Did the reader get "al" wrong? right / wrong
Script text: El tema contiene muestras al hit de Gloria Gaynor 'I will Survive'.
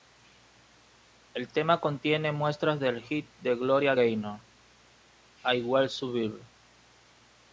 wrong